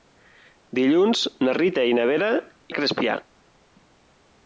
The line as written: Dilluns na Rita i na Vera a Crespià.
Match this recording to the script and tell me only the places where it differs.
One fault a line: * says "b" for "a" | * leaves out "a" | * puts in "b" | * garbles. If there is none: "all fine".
all fine